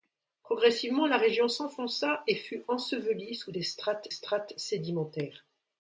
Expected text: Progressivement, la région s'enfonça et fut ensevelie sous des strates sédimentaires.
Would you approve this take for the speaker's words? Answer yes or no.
no